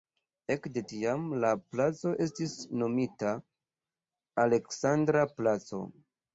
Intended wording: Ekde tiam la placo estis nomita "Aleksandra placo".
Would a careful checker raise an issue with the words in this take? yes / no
no